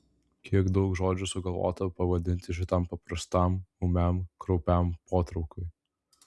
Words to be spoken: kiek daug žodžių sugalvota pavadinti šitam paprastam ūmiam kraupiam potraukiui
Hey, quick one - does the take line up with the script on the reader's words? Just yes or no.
yes